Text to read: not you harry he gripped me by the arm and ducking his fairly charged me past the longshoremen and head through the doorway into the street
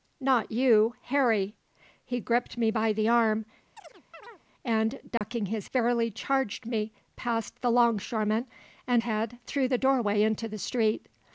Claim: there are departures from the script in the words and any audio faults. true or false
true